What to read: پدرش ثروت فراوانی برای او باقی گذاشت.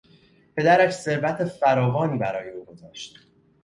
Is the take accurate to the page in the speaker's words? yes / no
no